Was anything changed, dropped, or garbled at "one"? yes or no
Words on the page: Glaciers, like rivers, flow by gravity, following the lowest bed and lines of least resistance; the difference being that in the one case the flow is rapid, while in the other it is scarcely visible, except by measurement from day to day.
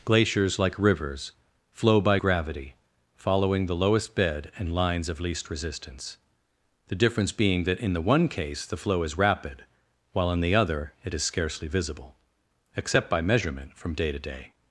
no